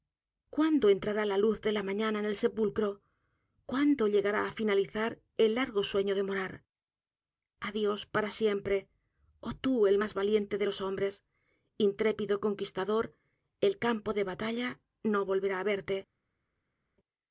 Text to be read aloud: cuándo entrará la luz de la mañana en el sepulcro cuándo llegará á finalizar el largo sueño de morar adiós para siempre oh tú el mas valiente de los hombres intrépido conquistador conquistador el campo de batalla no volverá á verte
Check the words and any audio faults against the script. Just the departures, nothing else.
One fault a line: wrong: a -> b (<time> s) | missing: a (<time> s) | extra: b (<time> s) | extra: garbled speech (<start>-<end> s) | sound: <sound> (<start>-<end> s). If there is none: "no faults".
missing: conquistador (13.0 s)